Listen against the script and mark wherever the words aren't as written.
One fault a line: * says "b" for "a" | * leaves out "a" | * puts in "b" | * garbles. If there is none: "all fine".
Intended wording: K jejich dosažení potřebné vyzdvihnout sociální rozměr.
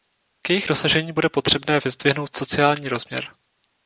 * puts in "bude"